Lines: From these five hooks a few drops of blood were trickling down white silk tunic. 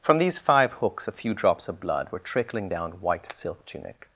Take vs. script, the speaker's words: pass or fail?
pass